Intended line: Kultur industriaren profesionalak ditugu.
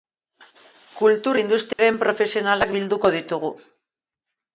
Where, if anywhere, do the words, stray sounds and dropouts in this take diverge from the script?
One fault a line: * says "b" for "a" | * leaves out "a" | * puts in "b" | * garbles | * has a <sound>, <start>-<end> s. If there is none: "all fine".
* has a dropout, 1.7-1.8 s
* puts in "bilduko"